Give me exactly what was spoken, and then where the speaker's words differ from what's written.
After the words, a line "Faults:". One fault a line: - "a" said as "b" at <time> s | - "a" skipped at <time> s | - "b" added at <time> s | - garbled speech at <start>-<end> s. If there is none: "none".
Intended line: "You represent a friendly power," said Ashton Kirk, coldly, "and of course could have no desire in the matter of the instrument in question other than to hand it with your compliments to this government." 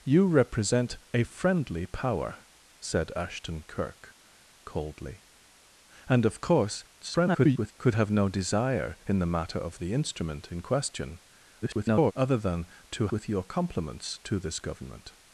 "You represent a friendly power," said Ashton Kirk, coldly, "and of course [garbled] could have no desire in the matter of the instrument in question [garbled] other than to with your compliments to this government."
Faults:
- garbled speech at 7.0-7.7 s
- garbled speech at 11.6-12.1 s
- "hand it" skipped at 13.1 s